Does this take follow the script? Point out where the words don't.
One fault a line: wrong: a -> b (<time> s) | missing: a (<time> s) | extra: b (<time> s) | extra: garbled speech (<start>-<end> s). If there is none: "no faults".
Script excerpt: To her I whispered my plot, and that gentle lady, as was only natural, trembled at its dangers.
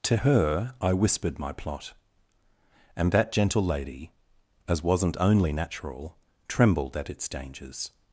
wrong: was -> wasn't (4.8 s)